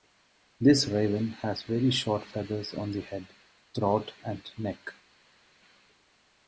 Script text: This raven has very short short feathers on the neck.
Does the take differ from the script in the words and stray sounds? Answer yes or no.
yes